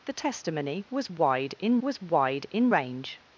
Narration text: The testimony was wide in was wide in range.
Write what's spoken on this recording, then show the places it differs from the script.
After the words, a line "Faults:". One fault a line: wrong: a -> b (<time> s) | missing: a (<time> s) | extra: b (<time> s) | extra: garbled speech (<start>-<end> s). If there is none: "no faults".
The testimony was wide in was wide in range.
Faults:
no faults